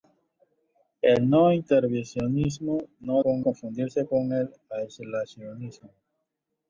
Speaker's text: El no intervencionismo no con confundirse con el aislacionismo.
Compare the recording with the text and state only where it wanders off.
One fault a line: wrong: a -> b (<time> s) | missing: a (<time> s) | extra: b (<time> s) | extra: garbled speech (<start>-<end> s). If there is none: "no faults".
no faults